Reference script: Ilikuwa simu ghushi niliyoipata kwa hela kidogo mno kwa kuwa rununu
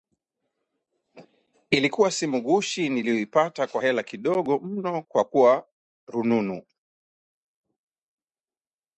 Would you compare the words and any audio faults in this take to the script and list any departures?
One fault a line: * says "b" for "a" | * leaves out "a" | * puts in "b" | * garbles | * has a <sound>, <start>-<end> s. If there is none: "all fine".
all fine